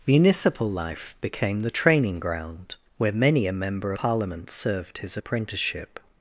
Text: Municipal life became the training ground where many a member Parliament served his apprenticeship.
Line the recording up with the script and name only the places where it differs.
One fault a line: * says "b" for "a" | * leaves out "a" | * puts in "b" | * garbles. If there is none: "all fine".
all fine